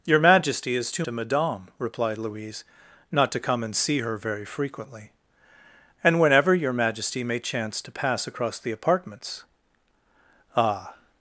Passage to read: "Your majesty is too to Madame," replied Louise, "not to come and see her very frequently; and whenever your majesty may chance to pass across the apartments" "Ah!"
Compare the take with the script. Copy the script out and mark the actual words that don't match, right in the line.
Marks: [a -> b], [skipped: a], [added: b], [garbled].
"Your majesty is too to Madame," replied Louise, "not to come and see her very frequently; and whenever your majesty may chance to pass across the apartments" "Ah!"